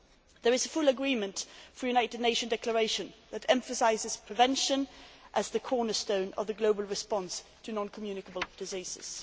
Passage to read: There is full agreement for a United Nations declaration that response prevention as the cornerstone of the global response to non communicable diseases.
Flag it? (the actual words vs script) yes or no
yes